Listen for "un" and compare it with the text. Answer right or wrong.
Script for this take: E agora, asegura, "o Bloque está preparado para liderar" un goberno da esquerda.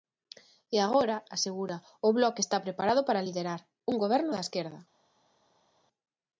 right